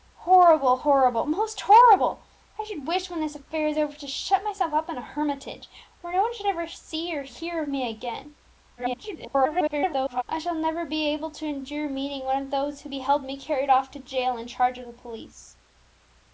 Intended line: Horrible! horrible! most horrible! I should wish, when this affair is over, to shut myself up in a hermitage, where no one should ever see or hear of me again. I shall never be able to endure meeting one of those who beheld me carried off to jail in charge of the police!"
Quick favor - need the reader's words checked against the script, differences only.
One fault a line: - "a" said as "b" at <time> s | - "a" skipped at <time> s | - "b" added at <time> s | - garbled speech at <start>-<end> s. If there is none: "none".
- garbled speech at 8.8-10.2 s